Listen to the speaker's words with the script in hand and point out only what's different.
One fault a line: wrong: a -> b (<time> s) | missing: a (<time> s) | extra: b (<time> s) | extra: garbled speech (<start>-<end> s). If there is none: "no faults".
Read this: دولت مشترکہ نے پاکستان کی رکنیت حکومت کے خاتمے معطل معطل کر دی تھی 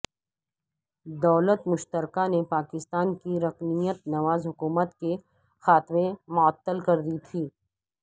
extra: نواز (4.1 s)
missing: معطل (6.8 s)